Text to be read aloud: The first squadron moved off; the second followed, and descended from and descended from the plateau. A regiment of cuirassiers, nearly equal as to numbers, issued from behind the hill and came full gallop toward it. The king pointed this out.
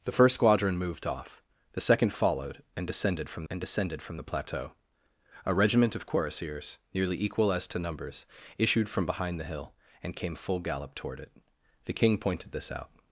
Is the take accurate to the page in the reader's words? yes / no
yes